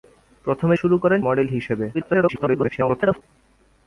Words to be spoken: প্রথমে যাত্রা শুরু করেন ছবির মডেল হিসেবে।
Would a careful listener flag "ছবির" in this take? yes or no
yes